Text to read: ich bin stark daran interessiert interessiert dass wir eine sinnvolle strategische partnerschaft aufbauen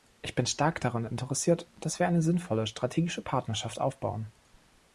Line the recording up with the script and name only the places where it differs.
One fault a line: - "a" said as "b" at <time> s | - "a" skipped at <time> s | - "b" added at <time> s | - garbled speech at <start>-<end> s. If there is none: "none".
- "interessiert" skipped at 1.7 s